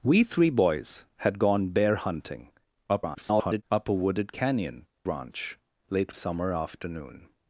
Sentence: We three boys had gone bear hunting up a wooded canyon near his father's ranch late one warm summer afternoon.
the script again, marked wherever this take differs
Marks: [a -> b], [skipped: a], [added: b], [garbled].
We three boys had gone bear hunting [garbled] up a wooded canyon [skipped: near his father's] ranch late [skipped: one warm] summer afternoon.